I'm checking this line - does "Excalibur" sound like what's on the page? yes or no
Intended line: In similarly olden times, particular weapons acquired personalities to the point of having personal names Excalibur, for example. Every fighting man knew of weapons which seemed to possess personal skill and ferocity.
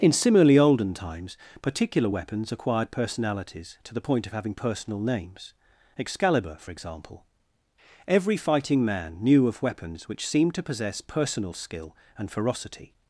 yes